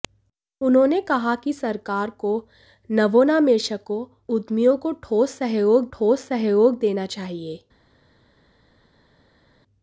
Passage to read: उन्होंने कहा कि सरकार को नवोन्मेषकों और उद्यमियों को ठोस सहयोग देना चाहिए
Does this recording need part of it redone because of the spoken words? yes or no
yes